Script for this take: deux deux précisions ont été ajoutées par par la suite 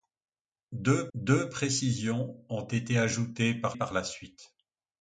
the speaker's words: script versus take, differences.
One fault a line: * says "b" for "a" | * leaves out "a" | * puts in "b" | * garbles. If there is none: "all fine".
all fine